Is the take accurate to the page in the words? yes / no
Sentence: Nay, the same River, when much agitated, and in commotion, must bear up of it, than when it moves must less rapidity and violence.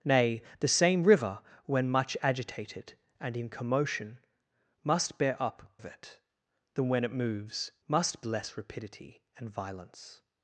yes